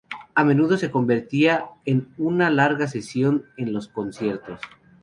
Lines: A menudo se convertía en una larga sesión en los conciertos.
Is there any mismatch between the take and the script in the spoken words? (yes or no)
no